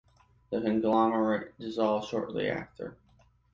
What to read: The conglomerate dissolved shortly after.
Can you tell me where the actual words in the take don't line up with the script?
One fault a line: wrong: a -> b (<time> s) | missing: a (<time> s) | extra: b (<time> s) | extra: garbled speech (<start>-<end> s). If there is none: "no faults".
no faults